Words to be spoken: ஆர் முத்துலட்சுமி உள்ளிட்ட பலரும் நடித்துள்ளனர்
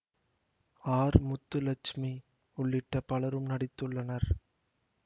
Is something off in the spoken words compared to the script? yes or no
no